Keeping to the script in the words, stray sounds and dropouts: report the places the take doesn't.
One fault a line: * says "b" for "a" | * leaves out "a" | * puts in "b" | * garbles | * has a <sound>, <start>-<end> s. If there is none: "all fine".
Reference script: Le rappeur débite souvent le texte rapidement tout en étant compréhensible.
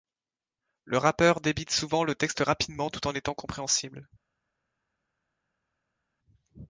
all fine